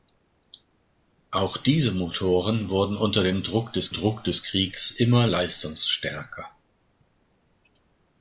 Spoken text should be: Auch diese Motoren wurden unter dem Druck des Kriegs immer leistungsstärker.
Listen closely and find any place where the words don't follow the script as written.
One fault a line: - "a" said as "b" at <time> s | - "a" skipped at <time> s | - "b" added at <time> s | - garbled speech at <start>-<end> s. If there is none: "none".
- "Druck des" added at 3.9 s